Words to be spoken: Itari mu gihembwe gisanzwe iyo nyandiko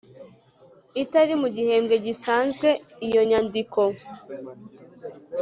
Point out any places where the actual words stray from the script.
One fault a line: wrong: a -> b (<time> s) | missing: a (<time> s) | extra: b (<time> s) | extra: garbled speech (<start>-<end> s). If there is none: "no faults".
no faults